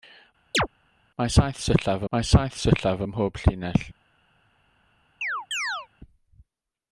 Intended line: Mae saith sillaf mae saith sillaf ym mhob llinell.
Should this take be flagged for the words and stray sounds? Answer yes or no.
yes